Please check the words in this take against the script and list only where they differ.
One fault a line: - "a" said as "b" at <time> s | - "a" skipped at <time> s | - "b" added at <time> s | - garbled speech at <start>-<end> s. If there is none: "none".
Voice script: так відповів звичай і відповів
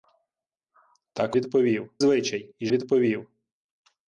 none